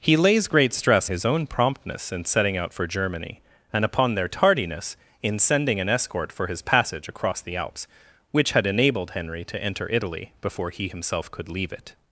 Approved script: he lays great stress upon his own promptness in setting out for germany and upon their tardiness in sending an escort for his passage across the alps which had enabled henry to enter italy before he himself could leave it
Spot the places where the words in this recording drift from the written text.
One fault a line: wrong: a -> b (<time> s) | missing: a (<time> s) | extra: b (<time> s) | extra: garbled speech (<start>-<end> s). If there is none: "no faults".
missing: upon (1.1 s)